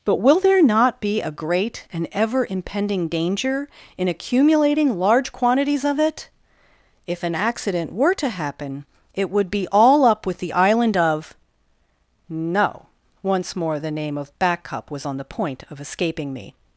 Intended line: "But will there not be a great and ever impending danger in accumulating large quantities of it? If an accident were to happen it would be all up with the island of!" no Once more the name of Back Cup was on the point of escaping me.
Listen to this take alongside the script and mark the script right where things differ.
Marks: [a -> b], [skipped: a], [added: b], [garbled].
"But will there not be a great and ever impending danger in accumulating large quantities of it? If an accident were to happen it would be all up with the island of!" no Once more the name of Back Cup was on the point of escaping me.